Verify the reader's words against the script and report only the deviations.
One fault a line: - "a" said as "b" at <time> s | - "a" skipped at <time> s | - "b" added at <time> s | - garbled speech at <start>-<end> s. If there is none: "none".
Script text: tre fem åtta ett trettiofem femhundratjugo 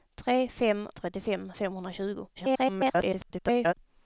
- "åtta ett" skipped at 0.9 s
- garbled speech at 2.3-3.7 s